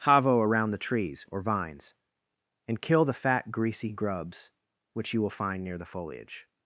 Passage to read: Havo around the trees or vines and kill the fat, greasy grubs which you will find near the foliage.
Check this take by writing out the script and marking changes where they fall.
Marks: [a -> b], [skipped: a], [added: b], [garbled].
Havo around the trees or vines and kill the fat, greasy grubs which you will find near the foliage.